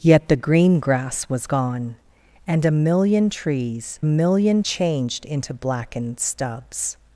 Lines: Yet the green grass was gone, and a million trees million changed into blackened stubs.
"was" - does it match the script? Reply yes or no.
yes